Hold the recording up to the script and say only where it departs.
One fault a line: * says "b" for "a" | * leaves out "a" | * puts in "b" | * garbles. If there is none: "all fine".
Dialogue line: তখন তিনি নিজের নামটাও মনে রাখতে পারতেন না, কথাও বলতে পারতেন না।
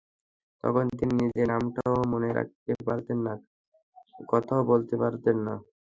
all fine